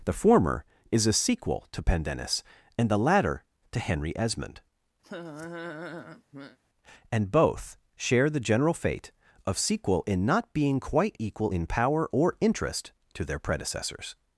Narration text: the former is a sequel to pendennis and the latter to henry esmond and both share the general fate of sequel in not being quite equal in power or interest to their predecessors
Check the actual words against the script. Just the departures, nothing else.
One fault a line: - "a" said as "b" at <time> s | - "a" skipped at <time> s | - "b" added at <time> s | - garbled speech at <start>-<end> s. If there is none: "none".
none